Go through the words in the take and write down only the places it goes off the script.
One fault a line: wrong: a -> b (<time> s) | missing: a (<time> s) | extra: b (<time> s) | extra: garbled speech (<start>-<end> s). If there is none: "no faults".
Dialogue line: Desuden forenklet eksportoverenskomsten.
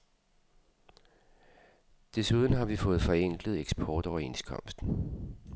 extra: har vi fået (2.5 s)